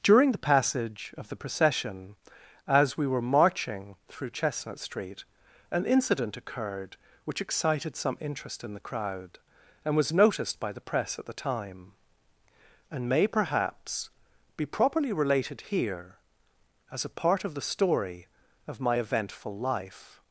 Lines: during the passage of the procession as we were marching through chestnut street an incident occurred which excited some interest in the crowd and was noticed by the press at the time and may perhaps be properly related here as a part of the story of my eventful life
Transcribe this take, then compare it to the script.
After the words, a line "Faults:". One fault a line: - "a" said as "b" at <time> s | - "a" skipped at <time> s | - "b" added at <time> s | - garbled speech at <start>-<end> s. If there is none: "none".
during the passage of the procession as we were marching through chestnut street an incident occurred which excited some interest in the crowd and was noticed by the press at the time and may perhaps be properly related here as a part of the story of my eventful life
Faults:
none